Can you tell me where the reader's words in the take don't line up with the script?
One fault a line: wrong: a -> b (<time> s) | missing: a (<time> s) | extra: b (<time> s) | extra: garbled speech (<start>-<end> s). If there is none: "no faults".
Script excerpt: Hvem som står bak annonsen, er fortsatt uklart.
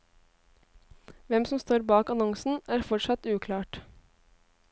no faults